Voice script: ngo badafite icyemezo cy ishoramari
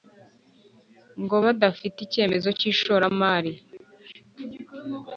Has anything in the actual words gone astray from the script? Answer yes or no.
no